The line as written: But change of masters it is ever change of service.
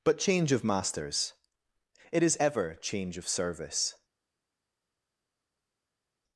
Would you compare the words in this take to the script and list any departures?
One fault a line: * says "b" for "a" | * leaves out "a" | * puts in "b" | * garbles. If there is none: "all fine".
all fine